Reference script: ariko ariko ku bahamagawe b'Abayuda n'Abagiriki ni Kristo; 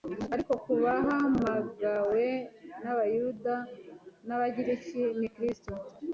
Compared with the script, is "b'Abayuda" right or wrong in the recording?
right